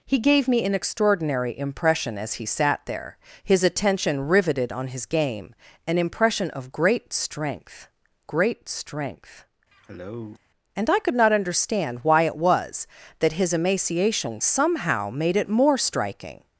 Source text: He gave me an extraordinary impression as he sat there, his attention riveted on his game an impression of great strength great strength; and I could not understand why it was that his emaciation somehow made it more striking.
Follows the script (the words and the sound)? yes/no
no